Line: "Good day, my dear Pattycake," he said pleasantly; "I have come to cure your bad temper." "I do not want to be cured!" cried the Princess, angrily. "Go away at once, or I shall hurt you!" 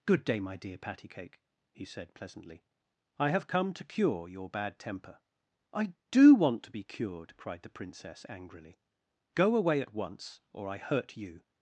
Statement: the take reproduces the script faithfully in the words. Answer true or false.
false